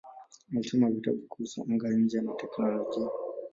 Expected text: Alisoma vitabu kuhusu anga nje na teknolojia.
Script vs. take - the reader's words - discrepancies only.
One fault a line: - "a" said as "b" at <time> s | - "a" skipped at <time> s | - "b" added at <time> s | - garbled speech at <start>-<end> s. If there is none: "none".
none